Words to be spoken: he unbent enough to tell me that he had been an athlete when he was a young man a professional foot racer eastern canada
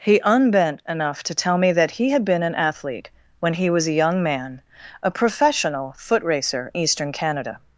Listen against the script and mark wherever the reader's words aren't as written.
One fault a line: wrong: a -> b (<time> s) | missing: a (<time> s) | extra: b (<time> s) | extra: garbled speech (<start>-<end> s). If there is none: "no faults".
no faults